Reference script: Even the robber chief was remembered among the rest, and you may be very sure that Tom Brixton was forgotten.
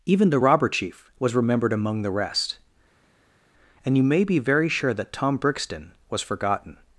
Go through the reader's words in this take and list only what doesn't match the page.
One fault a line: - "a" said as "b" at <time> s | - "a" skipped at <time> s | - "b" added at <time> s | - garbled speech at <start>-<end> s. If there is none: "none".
none